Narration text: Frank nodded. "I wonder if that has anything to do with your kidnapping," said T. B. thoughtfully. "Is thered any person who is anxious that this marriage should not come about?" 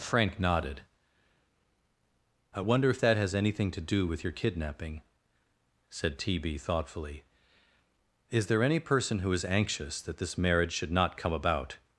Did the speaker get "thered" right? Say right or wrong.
wrong